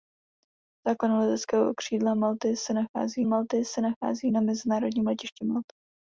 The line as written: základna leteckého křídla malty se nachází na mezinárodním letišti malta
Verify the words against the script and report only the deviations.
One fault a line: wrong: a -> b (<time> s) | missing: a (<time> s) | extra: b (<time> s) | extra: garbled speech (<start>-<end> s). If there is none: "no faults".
extra: malty se nachází (3.2 s)